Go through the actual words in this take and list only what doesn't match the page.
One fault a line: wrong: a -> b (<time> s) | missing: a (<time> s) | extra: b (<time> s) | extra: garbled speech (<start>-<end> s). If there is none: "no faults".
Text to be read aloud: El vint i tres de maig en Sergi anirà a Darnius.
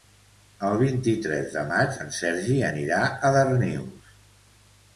no faults